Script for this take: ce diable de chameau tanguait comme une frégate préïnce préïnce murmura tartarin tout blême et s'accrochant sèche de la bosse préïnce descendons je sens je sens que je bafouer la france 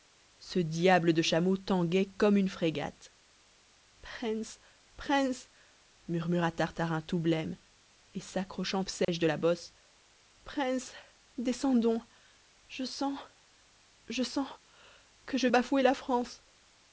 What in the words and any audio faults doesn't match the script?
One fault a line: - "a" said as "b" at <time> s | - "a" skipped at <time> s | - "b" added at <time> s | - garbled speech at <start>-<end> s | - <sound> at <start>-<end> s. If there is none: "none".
- dropout at 9.0-9.1 s